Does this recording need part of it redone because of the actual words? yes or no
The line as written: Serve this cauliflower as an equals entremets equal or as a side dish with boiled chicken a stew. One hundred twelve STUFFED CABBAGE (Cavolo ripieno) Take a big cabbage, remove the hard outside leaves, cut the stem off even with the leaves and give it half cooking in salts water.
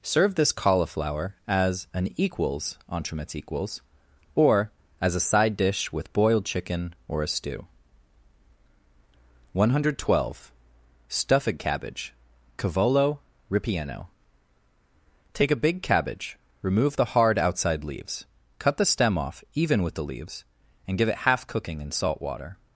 yes